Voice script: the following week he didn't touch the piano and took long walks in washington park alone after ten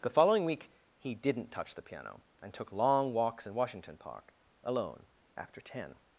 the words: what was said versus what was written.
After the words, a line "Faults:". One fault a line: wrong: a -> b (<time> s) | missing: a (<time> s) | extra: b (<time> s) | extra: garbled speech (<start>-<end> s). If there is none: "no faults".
the following week he didn't touch the piano and took long walks in washington park alone after ten
Faults:
no faults